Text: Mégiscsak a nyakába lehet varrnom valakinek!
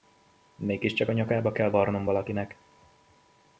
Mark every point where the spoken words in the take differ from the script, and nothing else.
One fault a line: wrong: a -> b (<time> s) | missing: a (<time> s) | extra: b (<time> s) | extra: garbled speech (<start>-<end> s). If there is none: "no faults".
wrong: lehet -> kell (1.5 s)